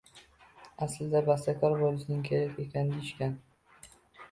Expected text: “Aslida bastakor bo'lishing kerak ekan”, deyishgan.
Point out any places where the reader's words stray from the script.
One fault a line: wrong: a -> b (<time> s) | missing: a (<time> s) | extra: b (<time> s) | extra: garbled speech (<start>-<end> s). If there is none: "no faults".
no faults